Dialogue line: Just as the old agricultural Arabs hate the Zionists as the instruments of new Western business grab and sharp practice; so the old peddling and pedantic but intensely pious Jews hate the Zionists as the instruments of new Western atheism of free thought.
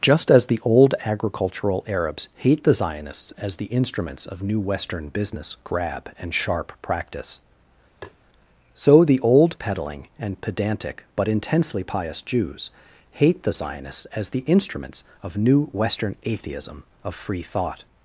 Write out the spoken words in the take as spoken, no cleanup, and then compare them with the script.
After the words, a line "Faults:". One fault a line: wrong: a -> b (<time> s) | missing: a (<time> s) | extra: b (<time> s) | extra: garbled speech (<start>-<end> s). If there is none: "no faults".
Just as the old agricultural Arabs hate the Zionists as the instruments of new Western business grab and sharp practice; so the old peddling and pedantic but intensely pious Jews hate the Zionists as the instruments of new Western atheism of free thought.
Faults:
no faults